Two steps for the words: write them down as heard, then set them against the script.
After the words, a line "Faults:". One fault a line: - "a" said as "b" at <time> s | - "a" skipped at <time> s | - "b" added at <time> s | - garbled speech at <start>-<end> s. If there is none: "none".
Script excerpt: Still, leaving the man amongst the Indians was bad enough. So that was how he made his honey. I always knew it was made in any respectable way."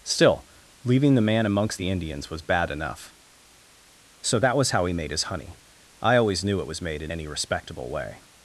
Still, leaving the man amongst the Indians was bad enough. So that was how he made his honey. I always knew it was made in any respectable way."
Faults:
none